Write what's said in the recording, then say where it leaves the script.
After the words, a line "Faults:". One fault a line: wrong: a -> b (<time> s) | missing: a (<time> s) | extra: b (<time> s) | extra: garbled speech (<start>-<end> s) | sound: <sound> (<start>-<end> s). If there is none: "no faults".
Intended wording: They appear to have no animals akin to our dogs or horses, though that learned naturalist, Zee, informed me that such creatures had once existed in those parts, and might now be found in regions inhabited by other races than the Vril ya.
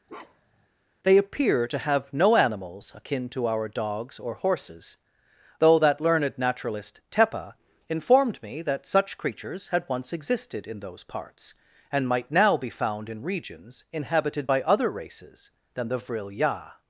They appear to have no animals akin to our dogs or horses, though that learned naturalist, Tepa, informed me that such creatures had once existed in those parts, and might now be found in regions inhabited by other races than the Vril ya.
Faults:
sound: bark (0.1-0.7 s)
wrong: Zee -> Tepa (7.1 s)